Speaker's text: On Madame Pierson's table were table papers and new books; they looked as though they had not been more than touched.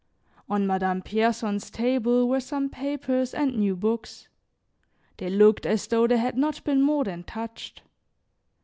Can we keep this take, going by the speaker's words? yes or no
no